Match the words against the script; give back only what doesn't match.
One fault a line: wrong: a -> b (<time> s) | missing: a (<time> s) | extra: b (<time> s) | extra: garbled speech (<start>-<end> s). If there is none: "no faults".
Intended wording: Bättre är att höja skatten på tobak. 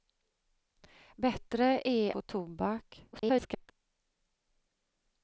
missing: att höja skatten (2.2 s)
extra: garbled speech (3.1-3.7 s)